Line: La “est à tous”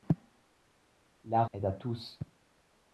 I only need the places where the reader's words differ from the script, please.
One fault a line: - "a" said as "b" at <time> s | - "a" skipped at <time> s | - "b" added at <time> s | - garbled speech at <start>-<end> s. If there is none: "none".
none